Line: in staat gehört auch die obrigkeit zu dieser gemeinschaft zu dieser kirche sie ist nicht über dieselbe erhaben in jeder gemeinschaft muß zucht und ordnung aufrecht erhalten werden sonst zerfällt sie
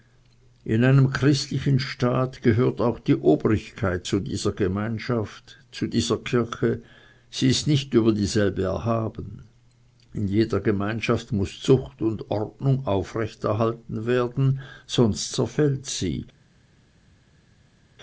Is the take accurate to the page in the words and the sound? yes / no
no